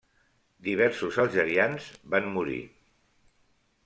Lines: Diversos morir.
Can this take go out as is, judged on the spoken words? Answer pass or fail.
fail